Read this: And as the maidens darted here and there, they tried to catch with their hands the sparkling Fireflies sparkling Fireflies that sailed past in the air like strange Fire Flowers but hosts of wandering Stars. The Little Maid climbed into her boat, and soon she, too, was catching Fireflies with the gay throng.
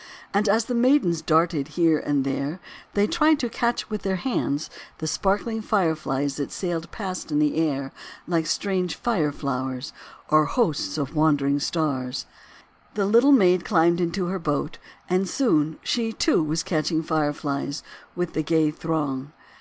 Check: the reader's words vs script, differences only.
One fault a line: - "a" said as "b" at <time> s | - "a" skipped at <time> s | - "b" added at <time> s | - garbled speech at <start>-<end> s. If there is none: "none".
- "sparkling Fireflies" skipped at 6.4 s
- "but" said as "or" at 10.3 s